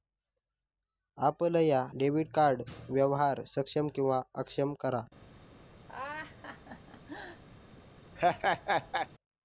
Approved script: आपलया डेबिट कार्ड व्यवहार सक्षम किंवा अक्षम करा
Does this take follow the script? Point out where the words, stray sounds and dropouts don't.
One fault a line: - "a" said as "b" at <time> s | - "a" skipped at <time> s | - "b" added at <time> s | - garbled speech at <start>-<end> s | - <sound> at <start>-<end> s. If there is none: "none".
- laugh at 5.9-7.4 s
- laugh at 8.2-9.1 s